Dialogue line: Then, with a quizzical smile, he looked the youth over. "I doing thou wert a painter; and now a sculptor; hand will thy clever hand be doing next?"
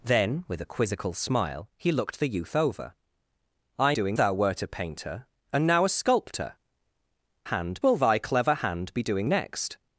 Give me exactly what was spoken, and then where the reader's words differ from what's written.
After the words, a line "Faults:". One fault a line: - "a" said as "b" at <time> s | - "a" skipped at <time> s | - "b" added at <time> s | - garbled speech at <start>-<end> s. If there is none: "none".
Then, with a quizzical smile, he looked the youth over. "I doing thou wert a painter; and now a sculptor; hand will thy clever hand be doing next?"
Faults:
none